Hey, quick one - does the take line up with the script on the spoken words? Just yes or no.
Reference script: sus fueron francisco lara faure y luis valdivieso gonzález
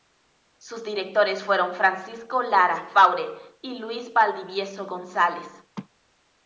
no